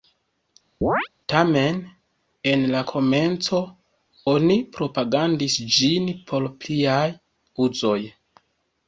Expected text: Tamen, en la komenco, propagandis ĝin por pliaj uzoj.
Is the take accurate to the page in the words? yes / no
no